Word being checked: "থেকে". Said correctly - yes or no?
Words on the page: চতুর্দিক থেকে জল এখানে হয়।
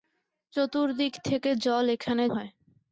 yes